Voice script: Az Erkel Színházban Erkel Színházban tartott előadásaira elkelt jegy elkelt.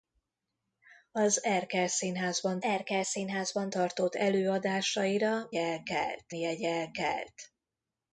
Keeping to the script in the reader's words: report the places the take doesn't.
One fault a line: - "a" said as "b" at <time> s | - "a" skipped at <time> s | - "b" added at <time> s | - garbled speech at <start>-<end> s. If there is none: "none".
none